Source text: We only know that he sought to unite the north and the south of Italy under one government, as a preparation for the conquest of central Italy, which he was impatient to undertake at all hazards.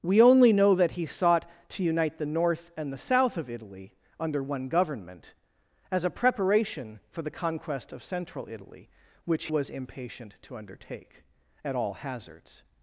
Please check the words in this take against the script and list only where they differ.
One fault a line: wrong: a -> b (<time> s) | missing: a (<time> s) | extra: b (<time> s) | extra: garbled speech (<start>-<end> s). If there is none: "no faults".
missing: he (9.5 s)